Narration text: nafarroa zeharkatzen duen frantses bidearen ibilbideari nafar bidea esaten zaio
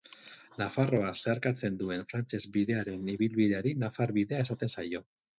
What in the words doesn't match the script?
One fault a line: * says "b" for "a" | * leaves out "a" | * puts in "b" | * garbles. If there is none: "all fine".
all fine